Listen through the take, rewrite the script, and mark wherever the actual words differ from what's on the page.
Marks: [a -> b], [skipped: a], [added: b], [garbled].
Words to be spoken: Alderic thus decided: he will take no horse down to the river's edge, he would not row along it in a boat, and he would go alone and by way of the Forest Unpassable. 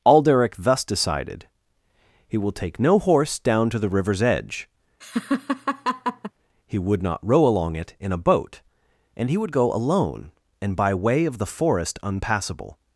Alderic thus decided: he will take no horse down to the river's edge, he would not row along it in a boat, and he would go alone and by way of the Forest Unpassable.